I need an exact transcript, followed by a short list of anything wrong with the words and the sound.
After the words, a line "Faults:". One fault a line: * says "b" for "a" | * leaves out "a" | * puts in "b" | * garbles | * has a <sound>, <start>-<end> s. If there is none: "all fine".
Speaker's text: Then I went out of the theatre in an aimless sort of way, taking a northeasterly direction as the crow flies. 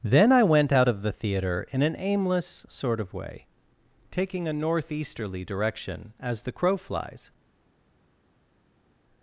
Then I went out of the theatre in an aimless sort of way, taking a northeasterly direction as the crow flies.
Faults:
all fine